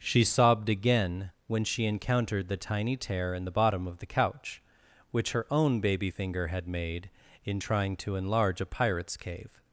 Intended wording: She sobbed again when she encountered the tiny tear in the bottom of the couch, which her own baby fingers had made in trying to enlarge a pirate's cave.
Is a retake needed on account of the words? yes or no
yes